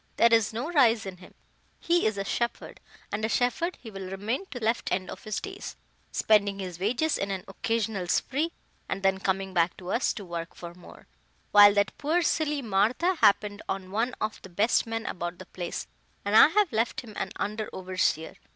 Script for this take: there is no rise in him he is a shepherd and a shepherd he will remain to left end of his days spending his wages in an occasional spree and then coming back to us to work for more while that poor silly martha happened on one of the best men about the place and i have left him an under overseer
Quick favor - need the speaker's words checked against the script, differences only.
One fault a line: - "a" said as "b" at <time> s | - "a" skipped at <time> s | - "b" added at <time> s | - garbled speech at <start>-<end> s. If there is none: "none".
none